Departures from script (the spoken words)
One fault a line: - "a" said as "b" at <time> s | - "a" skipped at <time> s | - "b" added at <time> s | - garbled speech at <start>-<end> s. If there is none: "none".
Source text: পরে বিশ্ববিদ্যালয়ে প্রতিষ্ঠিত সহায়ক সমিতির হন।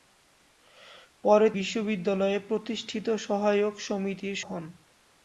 none